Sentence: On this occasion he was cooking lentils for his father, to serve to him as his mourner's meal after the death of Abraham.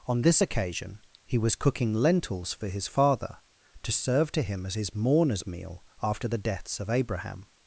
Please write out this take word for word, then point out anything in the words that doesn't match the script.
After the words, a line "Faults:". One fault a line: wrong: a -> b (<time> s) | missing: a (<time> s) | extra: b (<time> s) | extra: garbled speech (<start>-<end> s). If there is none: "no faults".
On this occasion he was cooking lentils for his father, to serve to him as his mourner's meal after the deaths of Abraham.
Faults:
wrong: death -> deaths (6.4 s)